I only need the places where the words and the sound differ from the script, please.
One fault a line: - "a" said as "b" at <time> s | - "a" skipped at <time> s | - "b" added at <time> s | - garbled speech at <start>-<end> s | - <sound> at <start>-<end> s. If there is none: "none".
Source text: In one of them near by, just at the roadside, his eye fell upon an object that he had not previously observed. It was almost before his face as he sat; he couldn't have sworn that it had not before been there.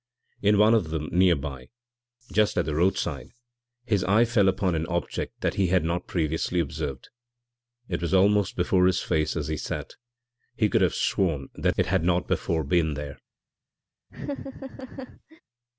- "couldn't" said as "could" at 10.7 s
- laugh at 14.1-15.4 s